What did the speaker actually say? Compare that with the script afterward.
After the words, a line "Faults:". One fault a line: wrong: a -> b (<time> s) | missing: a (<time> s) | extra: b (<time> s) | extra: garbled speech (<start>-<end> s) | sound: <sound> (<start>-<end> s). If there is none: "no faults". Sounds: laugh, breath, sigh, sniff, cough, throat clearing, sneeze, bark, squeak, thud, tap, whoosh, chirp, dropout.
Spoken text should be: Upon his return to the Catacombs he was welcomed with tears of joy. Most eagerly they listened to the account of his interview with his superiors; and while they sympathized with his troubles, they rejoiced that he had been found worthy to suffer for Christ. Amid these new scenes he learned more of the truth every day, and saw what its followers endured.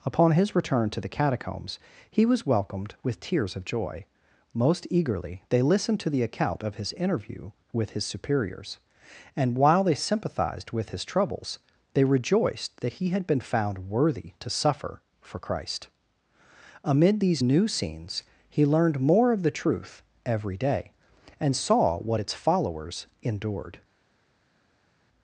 Upon his return to the Catacombs he was welcomed with tears of joy. Most eagerly they listened to the account of his interview with his superiors; and while they sympathized with his troubles, they rejoiced that he had been found worthy to suffer for Christ. Amid these new scenes he learned more of the truth every day, and saw what its followers endured.
Faults:
no faults